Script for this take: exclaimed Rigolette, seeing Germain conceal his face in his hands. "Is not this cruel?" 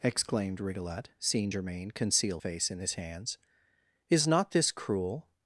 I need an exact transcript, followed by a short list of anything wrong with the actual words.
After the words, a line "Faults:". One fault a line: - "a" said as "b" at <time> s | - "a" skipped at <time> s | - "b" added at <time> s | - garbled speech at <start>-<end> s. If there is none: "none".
exclaimed Rigolette, seeing Germain conceal face in his hands. "Is not this cruel?"
Faults:
- "his" skipped at 2.4 s